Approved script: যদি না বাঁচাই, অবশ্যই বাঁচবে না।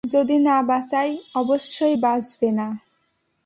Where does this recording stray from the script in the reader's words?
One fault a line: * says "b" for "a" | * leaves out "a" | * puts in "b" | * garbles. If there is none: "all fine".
all fine